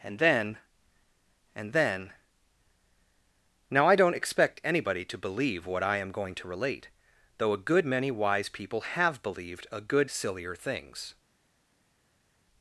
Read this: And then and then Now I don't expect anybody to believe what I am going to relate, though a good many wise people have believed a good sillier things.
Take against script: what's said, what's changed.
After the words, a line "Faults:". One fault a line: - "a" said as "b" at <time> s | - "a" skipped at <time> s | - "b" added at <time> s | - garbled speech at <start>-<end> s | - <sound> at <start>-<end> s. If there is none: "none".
And then and then Now I don't expect anybody to believe what I am going to relate, though a good many wise people have believed a good sillier things.
Faults:
none